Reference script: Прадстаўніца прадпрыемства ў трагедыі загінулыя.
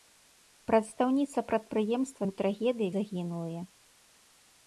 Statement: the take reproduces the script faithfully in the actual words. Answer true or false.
true